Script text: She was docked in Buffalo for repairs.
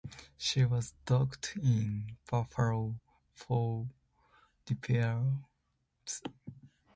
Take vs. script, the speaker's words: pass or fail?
pass